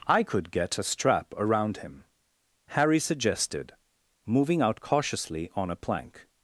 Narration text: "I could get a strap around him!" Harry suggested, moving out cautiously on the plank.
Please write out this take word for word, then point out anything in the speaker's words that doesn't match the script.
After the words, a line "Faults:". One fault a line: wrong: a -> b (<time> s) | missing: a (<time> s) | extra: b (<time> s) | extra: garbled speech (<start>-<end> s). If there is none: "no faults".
"I could get a strap around him!" Harry suggested, moving out cautiously on a plank.
Faults:
wrong: the -> a (5.7 s)